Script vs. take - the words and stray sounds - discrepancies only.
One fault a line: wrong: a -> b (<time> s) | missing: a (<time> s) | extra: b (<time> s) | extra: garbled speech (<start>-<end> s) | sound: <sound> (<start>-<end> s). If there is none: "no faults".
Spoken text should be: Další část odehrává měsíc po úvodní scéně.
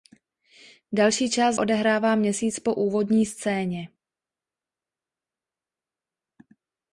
no faults